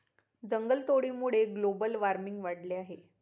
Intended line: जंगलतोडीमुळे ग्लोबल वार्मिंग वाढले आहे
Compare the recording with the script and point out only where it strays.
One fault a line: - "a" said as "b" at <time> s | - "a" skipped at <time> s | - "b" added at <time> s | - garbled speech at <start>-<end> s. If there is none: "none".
none